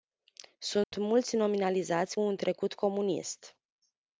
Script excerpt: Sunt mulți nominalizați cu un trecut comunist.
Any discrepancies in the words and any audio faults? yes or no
yes